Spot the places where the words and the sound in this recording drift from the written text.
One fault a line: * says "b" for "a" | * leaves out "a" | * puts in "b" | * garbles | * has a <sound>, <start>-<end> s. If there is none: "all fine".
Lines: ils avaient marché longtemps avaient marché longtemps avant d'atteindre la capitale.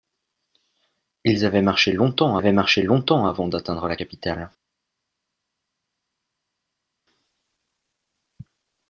all fine